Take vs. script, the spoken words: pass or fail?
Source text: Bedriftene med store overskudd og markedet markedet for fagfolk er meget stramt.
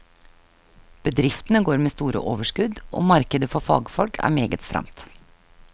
fail